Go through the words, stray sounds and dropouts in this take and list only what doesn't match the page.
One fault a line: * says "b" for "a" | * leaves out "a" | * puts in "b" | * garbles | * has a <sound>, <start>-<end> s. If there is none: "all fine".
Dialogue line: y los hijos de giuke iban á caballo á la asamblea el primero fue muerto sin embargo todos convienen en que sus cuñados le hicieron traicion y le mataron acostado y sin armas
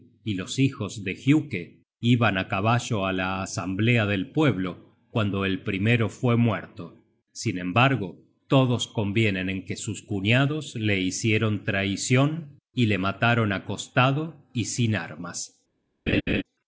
* puts in "del pueblo cuando"
* has a laugh, 16.1-16.4 s